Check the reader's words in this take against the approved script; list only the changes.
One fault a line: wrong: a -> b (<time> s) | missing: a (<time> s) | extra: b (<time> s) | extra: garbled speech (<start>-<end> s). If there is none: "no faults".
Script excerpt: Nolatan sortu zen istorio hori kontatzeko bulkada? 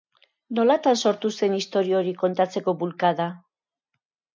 no faults